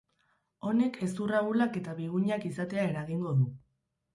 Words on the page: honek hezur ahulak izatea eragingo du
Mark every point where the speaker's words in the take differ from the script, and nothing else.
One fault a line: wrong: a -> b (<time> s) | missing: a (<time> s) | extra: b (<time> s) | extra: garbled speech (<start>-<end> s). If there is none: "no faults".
extra: eta bigunak (1.8 s)